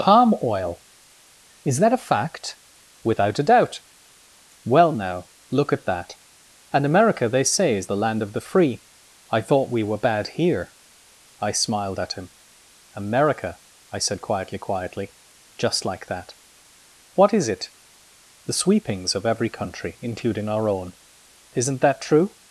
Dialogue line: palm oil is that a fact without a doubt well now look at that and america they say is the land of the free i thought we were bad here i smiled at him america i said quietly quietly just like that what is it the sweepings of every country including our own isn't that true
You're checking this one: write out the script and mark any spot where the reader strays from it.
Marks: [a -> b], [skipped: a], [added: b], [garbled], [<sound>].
palm oil is that a fact without a doubt well now look at that and america they say is the land of the free i thought we were bad here i smiled at him america i said quietly quietly just like that what is it the sweepings of every country including our own isn't that true